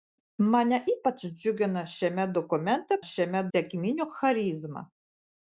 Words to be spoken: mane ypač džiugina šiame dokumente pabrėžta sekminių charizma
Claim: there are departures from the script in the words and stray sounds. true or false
true